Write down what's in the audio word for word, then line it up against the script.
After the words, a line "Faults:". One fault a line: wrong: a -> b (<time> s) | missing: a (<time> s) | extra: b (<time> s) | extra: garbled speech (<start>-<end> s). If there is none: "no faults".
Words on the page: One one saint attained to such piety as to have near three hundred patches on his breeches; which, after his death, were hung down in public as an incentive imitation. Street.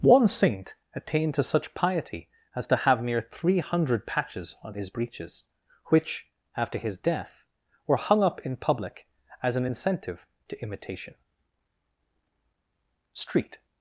One saint attained to such piety as to have near three hundred patches on his breeches; which, after his death, were hung up in public as an incentive to imitation. Street.
Faults:
missing: one (0.3 s)
wrong: down -> up (8.2 s)
extra: to (10.5 s)